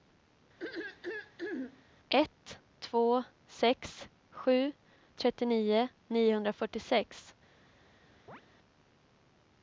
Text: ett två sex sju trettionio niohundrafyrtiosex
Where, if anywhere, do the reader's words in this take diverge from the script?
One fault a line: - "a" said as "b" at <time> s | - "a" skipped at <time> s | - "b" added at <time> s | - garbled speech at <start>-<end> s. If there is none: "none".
none